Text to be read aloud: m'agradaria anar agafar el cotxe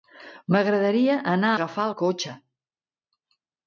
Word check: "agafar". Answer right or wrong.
right